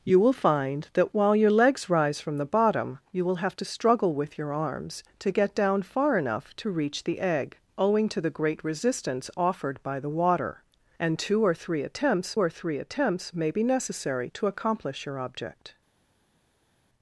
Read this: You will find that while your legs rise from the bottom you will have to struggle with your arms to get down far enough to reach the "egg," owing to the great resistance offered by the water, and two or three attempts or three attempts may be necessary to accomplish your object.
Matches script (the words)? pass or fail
pass